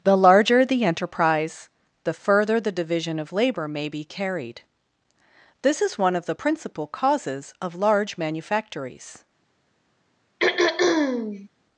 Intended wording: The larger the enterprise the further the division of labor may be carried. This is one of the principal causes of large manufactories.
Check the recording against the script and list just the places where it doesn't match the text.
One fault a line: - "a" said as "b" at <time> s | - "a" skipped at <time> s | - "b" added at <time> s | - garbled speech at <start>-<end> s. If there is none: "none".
none